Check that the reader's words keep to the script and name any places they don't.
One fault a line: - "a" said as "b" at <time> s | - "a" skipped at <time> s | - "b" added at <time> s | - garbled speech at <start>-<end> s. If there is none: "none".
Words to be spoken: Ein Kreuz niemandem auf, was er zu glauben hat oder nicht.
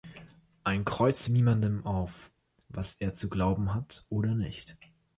none